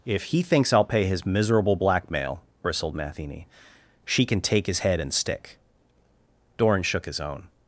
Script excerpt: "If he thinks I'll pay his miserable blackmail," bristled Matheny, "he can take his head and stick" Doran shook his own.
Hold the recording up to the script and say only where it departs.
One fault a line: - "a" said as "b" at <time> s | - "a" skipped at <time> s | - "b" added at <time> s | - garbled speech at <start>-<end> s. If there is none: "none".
- "he" said as "she" at 4.0 s